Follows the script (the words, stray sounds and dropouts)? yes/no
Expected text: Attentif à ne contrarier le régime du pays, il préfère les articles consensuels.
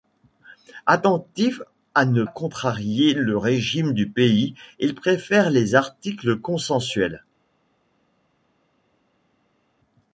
yes